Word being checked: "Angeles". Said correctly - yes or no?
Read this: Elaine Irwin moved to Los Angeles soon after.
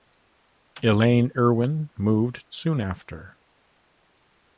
no